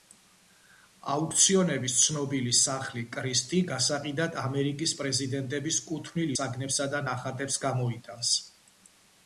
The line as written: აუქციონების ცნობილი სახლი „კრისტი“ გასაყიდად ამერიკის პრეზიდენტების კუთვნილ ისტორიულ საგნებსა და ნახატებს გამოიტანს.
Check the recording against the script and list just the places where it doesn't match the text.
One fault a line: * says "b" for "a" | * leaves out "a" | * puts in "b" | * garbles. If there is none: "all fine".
* leaves out "ისტორიულ"